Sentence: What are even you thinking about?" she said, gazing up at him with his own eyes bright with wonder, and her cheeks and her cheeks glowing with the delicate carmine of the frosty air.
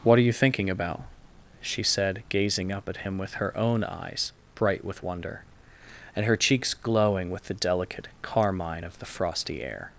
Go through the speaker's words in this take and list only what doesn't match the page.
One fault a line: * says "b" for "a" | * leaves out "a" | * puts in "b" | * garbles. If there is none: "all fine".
* leaves out "even"
* says "her" for "his"
* leaves out "and her cheeks"